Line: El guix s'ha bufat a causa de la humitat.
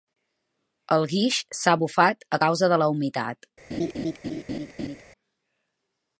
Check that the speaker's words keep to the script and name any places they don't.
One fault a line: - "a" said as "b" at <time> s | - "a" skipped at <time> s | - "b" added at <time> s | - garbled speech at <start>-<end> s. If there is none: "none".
none